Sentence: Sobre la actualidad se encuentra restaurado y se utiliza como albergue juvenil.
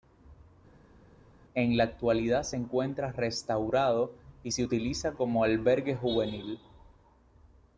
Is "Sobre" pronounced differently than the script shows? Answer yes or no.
yes